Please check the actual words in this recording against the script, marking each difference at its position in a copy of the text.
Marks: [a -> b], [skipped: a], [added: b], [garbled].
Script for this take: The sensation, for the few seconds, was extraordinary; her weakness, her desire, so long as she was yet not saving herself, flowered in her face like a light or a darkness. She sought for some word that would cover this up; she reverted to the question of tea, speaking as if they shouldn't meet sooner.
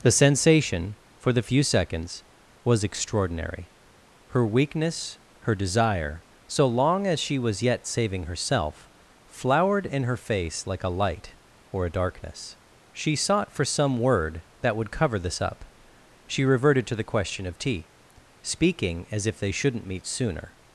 The sensation, for the few seconds, was extraordinary; her weakness, her desire, so long as she was yet [skipped: not] saving herself, flowered in her face like a light or a darkness. She sought for some word that would cover this up; she reverted to the question of tea, speaking as if they shouldn't meet sooner.